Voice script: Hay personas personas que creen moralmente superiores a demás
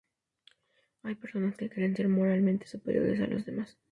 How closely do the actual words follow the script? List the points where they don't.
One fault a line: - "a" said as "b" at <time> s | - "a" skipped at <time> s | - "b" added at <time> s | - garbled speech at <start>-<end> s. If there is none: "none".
- "personas" skipped at 1.6 s
- "ser" added at 2.0 s
- "los" added at 3.3 s